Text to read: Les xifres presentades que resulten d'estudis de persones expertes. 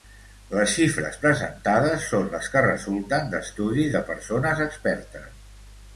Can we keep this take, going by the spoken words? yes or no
no